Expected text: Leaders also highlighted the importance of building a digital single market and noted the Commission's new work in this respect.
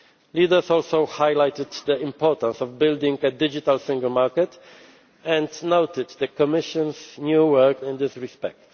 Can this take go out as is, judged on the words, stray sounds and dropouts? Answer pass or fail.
pass